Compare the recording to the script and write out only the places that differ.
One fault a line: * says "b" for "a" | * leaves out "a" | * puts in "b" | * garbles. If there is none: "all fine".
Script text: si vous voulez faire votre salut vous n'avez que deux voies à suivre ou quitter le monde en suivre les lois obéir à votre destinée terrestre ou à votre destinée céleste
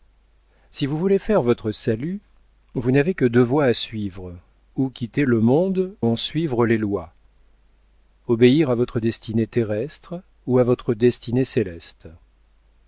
all fine